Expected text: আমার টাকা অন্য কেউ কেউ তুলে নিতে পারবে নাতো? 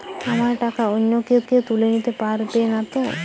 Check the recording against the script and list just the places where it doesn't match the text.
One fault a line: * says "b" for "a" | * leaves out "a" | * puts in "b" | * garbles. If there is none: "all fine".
all fine